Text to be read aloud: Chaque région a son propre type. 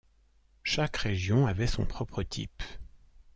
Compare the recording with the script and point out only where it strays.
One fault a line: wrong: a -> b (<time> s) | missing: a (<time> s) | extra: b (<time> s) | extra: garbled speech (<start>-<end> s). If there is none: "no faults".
wrong: a -> avait (1.4 s)